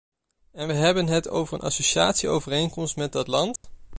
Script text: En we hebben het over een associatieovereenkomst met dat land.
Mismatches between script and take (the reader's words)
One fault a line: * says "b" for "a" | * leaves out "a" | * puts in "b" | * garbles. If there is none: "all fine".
all fine